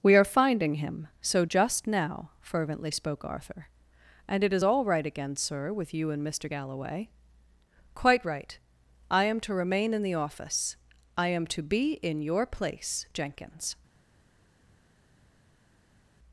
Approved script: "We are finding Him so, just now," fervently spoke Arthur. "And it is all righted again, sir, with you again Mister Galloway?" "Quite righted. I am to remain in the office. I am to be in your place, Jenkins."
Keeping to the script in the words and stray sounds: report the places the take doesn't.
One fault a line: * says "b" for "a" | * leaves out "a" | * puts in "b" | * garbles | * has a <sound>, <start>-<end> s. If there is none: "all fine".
* says "right" for "righted"
* says "and" for "again"
* says "right" for "righted"